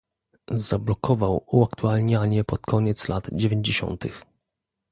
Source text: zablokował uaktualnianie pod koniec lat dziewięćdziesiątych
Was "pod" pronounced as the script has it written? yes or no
yes